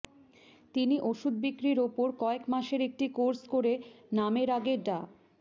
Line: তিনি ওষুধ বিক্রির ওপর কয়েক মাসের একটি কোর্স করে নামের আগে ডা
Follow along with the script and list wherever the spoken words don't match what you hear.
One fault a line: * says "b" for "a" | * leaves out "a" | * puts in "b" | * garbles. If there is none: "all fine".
all fine